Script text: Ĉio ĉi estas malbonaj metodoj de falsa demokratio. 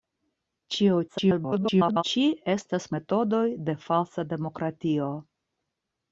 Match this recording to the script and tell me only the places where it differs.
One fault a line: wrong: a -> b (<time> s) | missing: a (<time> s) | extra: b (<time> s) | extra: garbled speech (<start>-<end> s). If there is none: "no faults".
extra: garbled speech (1.1-2.0 s)
missing: malbonaj (2.9 s)